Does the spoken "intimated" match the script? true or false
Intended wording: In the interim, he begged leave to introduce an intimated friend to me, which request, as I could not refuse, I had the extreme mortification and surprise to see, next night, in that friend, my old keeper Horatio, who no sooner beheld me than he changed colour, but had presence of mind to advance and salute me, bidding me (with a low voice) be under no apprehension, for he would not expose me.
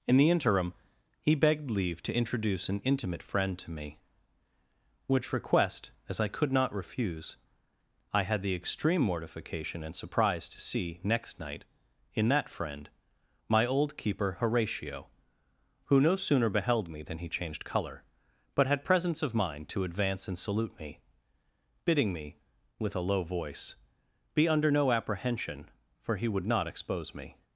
false